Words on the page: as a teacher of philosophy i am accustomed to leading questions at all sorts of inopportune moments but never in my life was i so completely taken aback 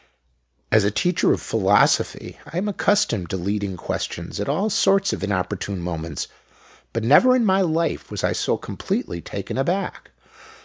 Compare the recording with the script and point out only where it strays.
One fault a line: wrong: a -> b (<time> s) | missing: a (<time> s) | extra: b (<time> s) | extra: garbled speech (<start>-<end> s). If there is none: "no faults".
no faults